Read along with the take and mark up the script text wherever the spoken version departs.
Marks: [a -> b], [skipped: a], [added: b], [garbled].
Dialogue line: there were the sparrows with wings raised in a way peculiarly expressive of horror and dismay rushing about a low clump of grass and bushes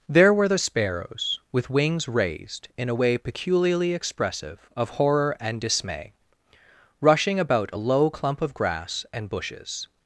there were the sparrows with wings raised in a way peculiarly expressive of horror and dismay rushing about a low clump of grass and bushes